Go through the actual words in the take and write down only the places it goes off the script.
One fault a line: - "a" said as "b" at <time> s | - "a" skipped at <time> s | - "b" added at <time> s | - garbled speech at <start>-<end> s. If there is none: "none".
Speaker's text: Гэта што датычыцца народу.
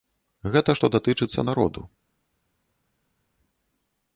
none